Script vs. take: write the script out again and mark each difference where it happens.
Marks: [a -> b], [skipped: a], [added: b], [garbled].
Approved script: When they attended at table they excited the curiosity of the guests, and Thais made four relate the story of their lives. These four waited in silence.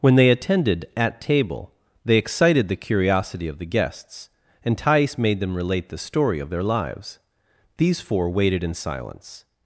When they attended at table they excited the curiosity of the guests, and Thais made [four -> them] relate the story of their lives. These four waited in silence.